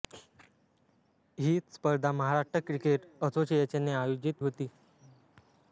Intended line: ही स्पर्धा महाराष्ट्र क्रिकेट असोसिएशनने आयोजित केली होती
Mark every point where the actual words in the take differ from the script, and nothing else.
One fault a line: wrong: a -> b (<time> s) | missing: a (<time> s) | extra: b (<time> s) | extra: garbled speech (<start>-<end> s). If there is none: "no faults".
missing: केली (4.4 s)